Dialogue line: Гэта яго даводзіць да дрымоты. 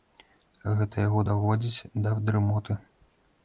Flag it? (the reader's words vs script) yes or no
no